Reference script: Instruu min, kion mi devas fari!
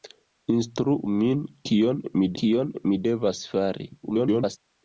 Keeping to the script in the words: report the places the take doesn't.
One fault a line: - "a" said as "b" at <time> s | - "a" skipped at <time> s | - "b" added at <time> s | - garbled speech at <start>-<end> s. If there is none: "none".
- "kion mi" added at 2.4 s
- garbled speech at 4.0-4.6 s